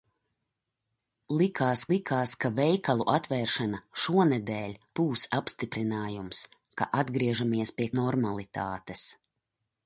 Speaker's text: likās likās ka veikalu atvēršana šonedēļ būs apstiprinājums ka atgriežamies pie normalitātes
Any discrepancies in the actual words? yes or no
no